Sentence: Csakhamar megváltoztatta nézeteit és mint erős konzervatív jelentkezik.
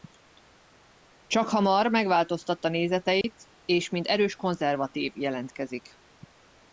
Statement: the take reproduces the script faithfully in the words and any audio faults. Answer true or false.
false